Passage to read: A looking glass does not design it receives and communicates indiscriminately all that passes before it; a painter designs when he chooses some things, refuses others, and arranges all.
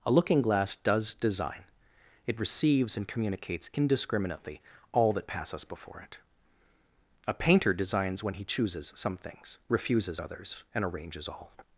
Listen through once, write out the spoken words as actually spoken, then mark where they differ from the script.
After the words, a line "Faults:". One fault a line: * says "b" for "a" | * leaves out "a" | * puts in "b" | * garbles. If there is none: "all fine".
A looking glass does design it receives and communicates indiscriminately all that passes before it; a painter designs when he chooses some things, refuses others, and arranges all.
Faults:
* leaves out "not"